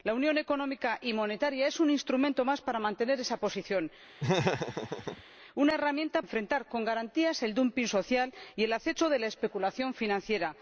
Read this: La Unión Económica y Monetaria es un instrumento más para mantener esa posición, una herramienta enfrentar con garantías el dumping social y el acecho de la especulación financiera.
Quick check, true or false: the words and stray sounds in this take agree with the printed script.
false